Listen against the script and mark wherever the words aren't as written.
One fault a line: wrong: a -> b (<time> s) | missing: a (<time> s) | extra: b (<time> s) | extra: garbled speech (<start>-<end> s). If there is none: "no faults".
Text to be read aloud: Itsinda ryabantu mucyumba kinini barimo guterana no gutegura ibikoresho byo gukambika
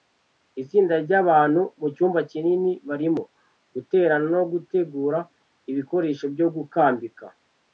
no faults